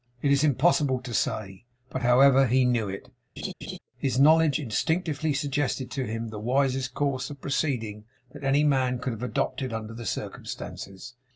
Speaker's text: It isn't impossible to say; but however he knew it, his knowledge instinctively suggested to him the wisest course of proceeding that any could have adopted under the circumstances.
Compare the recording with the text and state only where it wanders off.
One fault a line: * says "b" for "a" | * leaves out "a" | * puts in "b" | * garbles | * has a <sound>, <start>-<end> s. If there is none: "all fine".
* says "is" for "isn't"
* has a laugh, 3.4-3.8 s
* puts in "man"